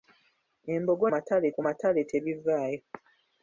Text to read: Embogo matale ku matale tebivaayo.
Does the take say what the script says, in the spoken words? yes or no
yes